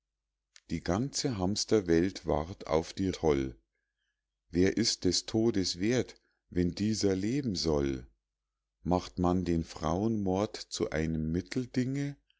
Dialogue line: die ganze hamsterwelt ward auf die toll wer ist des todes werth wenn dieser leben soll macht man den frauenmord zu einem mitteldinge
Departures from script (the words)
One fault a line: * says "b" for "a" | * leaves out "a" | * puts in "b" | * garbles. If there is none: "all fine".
all fine